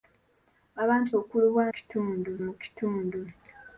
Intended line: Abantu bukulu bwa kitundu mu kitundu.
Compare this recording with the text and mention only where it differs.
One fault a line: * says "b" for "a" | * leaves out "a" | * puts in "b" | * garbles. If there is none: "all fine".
all fine